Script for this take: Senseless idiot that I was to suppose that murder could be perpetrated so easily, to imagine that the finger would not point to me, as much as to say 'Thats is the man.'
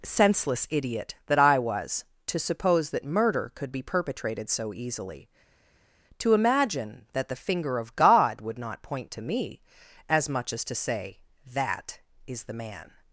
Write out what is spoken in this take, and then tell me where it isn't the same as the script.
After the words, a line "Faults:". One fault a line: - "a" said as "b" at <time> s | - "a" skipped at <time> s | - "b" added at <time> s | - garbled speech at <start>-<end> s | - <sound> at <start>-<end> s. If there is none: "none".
Senseless idiot that I was to suppose that murder could be perpetrated so easily, to imagine that the finger of God would not point to me, as much as to say 'That is the man.'
Faults:
- "of God" added at 7.8 s
- "Thats" said as "That" at 11.5 s